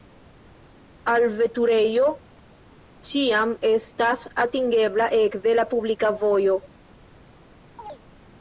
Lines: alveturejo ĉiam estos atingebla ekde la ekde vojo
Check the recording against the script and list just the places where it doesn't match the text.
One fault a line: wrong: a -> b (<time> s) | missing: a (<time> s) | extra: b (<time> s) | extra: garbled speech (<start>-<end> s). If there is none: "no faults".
wrong: estos -> estas (3.8 s)
wrong: ekde -> publika (5.8 s)